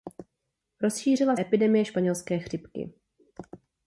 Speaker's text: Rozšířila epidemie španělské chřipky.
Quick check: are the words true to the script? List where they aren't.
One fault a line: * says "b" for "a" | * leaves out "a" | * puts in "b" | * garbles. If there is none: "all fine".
all fine